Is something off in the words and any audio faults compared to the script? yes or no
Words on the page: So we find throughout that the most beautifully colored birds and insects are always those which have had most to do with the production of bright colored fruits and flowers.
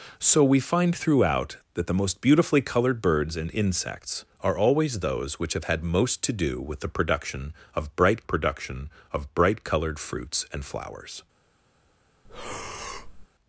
yes